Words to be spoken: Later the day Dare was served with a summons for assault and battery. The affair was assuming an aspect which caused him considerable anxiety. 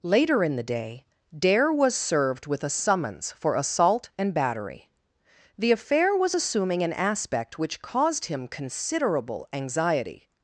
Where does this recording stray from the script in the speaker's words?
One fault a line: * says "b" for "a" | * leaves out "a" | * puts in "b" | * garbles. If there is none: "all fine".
* puts in "in"